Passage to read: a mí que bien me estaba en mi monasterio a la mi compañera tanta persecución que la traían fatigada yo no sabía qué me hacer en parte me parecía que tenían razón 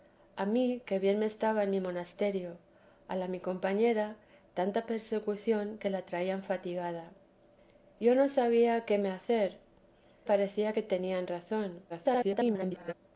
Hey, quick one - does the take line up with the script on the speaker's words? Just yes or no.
no